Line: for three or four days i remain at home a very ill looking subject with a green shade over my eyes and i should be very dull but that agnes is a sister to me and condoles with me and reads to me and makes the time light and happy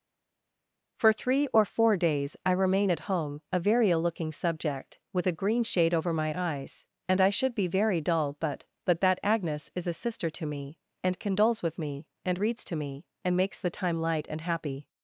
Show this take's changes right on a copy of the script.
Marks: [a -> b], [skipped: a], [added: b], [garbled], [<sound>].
for three or four days i remain at home a very ill looking subject with a green shade over my eyes and i should be very dull but [added: but] that agnes is a sister to me and condoles with me and reads to me and makes the time light and happy